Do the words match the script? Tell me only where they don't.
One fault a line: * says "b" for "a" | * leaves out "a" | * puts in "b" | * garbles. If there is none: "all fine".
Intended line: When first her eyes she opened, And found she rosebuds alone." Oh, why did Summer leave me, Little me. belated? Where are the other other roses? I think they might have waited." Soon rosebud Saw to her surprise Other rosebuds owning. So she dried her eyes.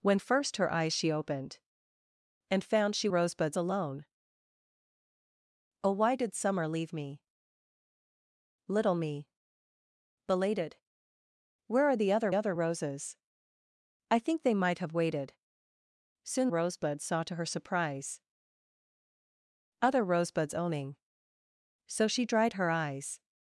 all fine